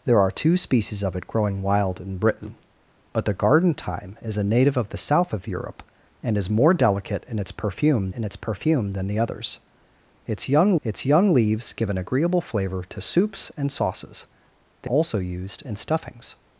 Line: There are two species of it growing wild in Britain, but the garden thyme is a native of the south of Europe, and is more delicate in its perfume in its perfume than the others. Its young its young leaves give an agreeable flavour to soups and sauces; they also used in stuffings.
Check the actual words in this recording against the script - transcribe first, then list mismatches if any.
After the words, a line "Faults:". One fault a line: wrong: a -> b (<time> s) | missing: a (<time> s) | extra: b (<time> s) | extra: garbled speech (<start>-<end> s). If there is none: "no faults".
There are two species of it growing wild in Britain, but the garden thyme is a native of the south of Europe, and is more delicate in its perfume in its perfume than the others. Its young its young leaves give an agreeable flavour to soups and sauces; they also used in stuffings.
Faults:
no faults